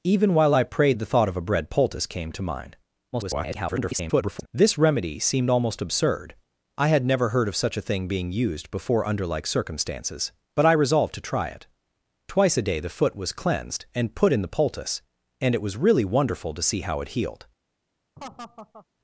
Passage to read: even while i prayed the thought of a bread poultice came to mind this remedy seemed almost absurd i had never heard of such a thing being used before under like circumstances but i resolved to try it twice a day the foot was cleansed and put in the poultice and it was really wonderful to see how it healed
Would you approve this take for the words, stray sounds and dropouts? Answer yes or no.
no